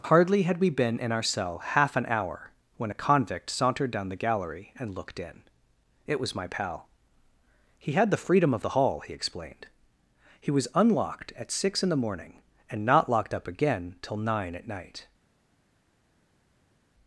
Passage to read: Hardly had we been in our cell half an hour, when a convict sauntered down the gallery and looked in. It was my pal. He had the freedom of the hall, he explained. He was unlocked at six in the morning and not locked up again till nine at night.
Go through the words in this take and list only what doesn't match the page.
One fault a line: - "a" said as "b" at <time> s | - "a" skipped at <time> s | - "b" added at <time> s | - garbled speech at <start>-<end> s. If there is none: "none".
none